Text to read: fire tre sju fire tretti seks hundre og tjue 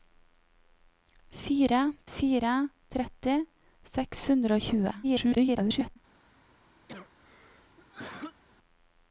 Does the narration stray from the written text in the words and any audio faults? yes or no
yes